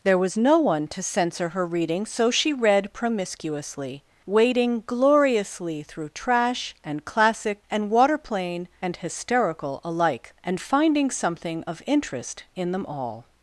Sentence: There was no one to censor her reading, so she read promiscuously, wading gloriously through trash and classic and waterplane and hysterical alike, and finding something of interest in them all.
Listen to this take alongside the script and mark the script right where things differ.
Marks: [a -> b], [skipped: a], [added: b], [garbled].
There was no one to censor her reading, so she read promiscuously, wading gloriously through trash and classic and waterplane and hysterical alike, and finding something of interest in them all.